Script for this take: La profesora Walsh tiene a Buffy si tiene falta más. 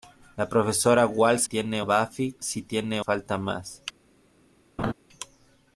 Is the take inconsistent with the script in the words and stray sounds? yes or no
yes